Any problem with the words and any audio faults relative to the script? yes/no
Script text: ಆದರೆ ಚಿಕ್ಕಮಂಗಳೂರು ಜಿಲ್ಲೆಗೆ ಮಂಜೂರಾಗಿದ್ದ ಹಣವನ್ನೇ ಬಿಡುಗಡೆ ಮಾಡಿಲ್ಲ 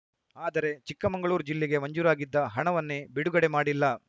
no